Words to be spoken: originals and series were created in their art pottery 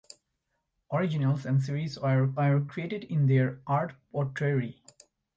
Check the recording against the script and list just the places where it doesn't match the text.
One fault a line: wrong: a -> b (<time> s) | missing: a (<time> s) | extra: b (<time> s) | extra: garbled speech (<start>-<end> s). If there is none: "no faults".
extra: were (2.3 s)